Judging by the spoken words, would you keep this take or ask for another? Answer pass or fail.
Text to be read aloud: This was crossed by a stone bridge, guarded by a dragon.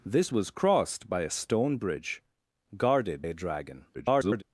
fail